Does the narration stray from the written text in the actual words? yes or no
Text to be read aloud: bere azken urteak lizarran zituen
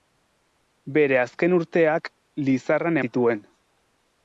no